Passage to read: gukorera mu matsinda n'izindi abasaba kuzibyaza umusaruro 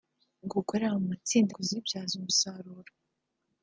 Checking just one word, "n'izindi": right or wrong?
wrong